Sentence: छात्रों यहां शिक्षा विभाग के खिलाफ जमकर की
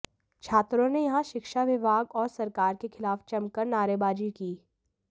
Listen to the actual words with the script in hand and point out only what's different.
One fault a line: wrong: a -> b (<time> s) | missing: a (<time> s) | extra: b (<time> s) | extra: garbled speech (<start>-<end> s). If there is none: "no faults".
extra: ने (0.9 s)
extra: और सरकार (2.1 s)
extra: नारेबाजी (3.7 s)